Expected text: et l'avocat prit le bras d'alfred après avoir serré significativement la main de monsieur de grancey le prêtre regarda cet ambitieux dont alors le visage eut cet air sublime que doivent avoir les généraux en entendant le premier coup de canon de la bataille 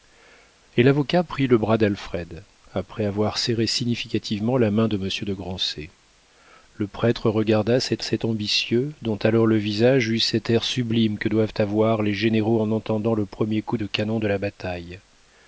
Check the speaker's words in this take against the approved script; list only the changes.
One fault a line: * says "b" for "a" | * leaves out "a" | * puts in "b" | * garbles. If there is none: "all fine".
* puts in "cet"